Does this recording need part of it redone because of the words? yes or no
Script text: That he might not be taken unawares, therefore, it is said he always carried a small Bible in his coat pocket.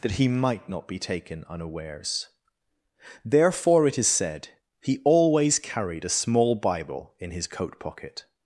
no